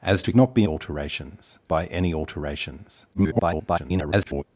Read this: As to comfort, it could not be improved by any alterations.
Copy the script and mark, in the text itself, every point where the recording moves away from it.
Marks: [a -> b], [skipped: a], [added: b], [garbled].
As to [skipped: comfort, it could] not be [improved -> alterations] by any alterations. [garbled]